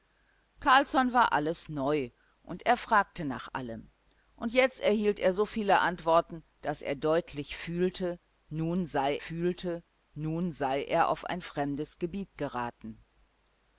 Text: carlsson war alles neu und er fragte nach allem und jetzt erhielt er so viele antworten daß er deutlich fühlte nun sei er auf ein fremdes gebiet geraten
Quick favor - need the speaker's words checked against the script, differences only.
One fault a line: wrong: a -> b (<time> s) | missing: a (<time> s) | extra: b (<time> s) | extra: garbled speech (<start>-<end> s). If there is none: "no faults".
extra: fühlte nun sei (9.2 s)